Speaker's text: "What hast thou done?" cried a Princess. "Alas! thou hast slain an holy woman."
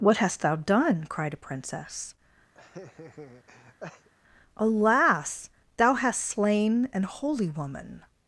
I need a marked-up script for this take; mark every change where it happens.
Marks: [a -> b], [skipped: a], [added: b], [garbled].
"What hast thou done?" cried a Princess. "Alas! thou hast slain an holy woman."